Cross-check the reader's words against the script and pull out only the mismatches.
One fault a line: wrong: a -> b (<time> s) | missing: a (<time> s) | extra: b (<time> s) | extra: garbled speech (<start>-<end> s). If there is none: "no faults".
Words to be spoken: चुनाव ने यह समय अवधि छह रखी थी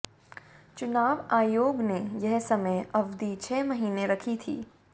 extra: आयोग (1.3 s)
extra: महीने (3.6 s)